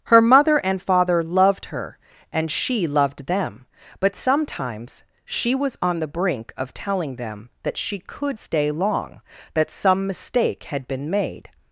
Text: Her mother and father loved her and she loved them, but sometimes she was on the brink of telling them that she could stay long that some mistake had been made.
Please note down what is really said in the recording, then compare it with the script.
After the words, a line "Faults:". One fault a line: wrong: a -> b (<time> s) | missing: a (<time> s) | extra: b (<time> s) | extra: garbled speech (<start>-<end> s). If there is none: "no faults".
Her mother and father loved her and she loved them, but sometimes she was on the brink of telling them that she could stay long that some mistake had been made.
Faults:
no faults